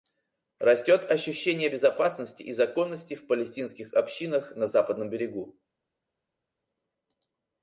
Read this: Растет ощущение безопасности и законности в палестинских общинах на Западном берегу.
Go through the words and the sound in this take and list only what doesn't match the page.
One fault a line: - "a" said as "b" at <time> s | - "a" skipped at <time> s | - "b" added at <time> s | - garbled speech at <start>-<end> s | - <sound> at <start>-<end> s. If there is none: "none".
none